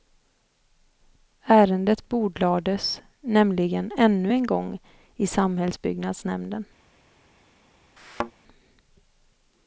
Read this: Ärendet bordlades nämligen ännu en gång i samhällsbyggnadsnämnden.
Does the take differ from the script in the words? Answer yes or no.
no